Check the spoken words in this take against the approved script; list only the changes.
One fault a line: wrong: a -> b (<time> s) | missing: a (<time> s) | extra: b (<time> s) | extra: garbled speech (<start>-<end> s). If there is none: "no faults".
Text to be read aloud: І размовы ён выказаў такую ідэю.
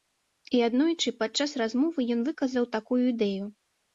extra: аднойчы падчас (0.7 s)